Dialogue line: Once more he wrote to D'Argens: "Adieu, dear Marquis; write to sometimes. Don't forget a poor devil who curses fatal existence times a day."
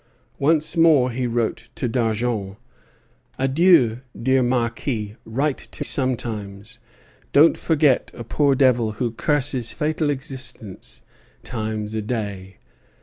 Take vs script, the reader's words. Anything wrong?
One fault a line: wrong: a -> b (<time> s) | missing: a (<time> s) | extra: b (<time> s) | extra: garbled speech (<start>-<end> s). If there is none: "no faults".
no faults